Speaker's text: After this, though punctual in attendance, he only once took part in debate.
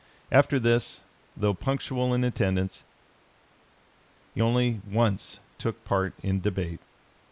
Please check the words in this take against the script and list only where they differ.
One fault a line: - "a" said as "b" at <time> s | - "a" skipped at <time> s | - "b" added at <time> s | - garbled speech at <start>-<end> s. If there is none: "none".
none